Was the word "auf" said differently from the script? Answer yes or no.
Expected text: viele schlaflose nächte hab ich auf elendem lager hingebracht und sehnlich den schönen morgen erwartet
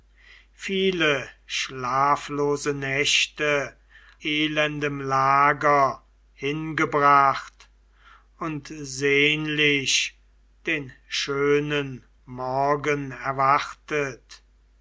yes